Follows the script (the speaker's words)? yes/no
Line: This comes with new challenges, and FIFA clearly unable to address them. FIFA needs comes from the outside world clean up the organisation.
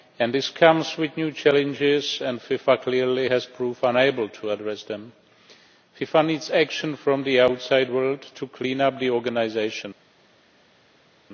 no